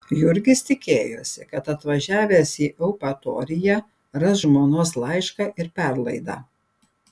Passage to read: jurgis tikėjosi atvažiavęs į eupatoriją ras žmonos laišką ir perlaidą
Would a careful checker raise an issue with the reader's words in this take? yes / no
yes